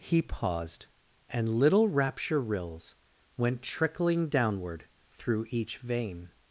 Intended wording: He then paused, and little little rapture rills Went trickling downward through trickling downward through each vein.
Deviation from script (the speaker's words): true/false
true